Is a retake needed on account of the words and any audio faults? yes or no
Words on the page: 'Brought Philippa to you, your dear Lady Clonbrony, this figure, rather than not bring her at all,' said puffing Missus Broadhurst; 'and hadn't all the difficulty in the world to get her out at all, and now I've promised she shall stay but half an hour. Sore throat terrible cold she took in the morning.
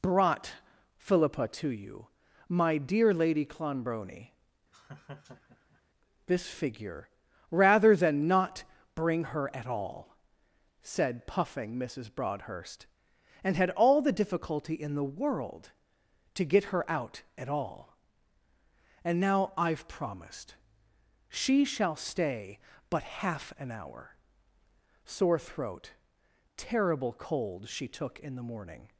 yes